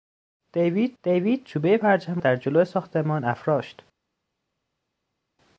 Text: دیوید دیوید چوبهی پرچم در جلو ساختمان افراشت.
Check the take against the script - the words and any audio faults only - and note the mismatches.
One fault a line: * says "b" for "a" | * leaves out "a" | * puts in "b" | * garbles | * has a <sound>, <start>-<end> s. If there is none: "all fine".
all fine